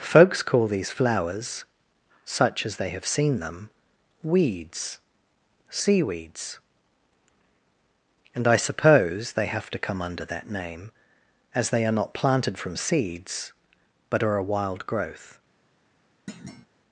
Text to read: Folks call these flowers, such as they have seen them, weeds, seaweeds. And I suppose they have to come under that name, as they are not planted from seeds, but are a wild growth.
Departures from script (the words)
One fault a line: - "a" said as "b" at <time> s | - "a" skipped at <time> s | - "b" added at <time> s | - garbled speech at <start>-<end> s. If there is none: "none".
none